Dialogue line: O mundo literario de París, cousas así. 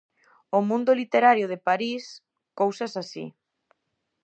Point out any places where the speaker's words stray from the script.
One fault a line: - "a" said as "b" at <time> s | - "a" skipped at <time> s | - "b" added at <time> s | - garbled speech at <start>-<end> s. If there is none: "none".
none